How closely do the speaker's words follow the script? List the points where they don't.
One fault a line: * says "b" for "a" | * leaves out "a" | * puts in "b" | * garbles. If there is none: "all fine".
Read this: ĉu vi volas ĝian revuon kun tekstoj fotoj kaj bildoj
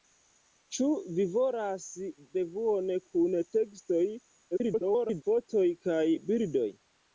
* leaves out "ĝian"
* garbles